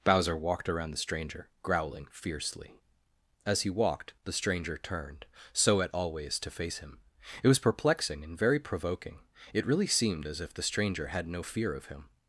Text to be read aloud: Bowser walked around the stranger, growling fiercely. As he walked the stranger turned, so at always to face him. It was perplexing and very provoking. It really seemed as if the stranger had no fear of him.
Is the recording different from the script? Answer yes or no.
no